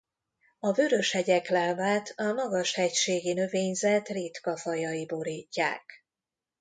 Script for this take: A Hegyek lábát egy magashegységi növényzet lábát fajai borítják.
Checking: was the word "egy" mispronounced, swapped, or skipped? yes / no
yes